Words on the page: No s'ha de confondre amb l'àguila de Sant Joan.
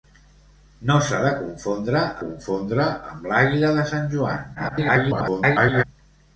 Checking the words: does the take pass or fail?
fail